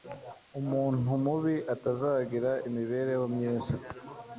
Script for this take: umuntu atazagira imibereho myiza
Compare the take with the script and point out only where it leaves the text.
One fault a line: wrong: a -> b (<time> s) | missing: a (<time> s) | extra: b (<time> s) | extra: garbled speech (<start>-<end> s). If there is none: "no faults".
extra: mubi (1.2 s)